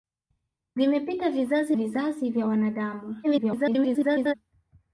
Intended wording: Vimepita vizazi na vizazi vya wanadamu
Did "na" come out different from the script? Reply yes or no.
yes